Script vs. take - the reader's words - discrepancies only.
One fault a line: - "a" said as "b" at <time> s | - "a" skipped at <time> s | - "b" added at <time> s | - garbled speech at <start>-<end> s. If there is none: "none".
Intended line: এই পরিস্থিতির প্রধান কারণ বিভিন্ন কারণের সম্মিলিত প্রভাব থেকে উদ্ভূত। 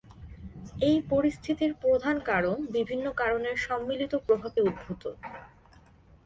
- "থেকে" skipped at 4.5 s